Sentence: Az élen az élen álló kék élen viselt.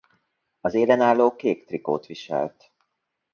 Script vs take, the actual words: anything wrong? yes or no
yes